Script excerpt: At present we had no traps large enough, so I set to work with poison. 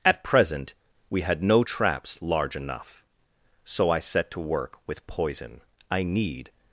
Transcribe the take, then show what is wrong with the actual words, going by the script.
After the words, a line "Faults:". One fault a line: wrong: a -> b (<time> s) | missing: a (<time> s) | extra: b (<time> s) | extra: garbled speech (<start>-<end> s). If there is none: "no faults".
At present we had no traps large enough, so I set to work with poison. I need
Faults:
extra: I need (5.9 s)